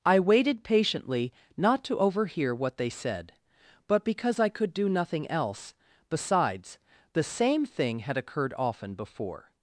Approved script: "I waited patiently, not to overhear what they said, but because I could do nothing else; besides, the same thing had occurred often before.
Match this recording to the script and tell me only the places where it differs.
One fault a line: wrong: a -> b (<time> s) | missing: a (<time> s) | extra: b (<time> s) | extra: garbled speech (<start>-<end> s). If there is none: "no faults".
no faults